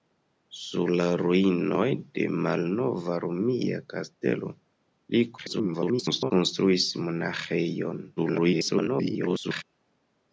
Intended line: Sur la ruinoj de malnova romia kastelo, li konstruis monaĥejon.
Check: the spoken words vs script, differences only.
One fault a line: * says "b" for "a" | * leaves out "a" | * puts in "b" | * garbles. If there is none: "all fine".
* garbles
* garbles